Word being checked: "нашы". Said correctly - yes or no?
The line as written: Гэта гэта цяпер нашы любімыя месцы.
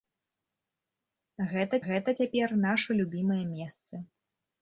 yes